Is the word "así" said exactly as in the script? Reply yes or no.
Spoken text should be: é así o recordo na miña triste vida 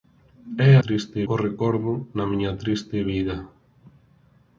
no